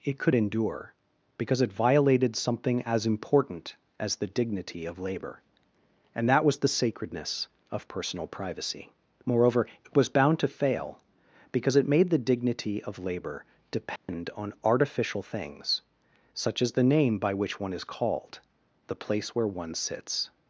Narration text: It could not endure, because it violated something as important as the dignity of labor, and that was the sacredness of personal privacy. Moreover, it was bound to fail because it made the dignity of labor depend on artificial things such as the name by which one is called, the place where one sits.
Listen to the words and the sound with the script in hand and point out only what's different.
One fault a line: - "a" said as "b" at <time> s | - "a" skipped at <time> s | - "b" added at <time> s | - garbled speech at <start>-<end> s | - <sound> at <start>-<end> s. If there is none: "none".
- "not" skipped at 0.3 s
- dropout at 14.0-14.1 s